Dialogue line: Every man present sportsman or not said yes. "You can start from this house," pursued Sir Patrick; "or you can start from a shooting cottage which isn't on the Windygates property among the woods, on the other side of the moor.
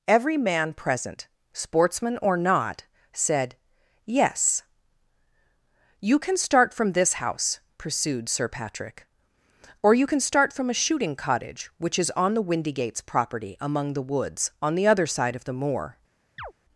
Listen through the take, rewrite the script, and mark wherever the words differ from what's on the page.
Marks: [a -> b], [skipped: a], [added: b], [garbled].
Every man present sportsman or not said yes. "You can start from this house," pursued Sir Patrick; "or you can start from a shooting cottage which [isn't -> is] on the Windygates property among the woods, on the other side of the moor.